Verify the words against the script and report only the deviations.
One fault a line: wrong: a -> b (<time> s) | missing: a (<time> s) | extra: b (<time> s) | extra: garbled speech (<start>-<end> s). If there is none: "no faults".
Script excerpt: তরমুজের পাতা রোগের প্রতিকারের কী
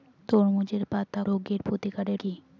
no faults